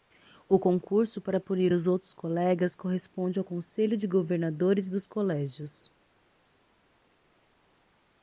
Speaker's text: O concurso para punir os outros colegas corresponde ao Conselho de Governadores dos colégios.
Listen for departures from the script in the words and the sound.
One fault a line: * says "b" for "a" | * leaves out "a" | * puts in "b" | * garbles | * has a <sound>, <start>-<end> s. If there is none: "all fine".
all fine